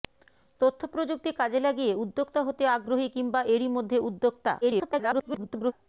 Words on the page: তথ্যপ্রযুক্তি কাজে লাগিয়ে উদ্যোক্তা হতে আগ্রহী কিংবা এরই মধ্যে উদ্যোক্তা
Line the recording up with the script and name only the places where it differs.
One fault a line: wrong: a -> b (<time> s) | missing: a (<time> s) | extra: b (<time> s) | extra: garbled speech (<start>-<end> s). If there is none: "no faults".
extra: garbled speech (4.6-5.7 s)